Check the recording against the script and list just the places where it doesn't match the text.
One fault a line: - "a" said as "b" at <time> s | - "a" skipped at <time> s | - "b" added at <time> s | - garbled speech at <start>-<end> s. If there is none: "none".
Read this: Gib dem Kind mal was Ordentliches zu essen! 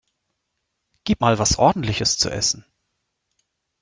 - "dem Kind" skipped at 1.2 s